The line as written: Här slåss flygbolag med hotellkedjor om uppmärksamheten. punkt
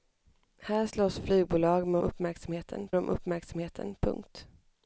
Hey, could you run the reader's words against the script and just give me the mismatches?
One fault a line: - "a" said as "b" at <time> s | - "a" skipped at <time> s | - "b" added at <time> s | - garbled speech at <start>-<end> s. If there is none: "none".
- "hotellkedjor" said as "uppmärksamheten" at 2.0 s